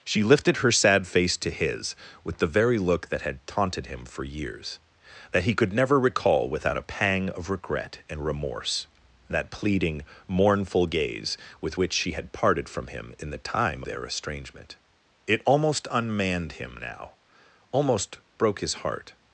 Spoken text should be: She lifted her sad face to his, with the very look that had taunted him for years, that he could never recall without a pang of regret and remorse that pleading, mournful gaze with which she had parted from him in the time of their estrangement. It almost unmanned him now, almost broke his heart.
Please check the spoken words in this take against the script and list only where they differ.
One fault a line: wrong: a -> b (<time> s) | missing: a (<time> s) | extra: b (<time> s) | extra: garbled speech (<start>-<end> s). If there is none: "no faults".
missing: of (13.8 s)